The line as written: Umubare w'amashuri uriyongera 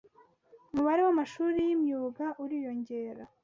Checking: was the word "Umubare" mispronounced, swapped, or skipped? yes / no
no